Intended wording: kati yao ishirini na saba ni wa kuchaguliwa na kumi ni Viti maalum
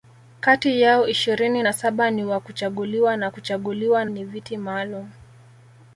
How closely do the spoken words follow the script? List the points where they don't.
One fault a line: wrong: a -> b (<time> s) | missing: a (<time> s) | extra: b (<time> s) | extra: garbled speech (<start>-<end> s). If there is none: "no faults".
wrong: kumi -> kuchaguliwa (3.3 s)